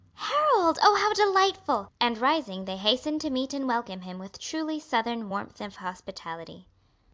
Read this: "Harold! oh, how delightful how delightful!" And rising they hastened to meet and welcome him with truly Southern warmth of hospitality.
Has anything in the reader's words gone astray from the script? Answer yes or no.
yes